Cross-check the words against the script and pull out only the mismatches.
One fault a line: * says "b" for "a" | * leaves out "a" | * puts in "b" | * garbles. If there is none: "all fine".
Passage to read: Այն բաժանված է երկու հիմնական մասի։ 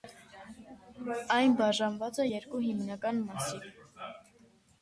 all fine